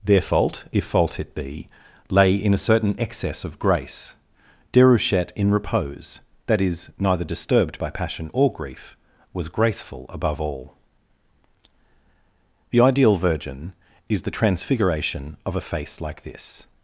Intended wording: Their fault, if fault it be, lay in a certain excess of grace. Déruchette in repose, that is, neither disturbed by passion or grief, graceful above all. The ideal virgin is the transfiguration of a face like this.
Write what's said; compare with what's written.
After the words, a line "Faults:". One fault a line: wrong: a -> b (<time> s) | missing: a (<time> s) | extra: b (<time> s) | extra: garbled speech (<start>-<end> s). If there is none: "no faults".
Their fault, if fault it be, lay in a certain excess of grace. Déruchette in repose, that is, neither disturbed by passion or grief, was graceful above all. The ideal virgin is the transfiguration of a face like this.
Faults:
extra: was (9.3 s)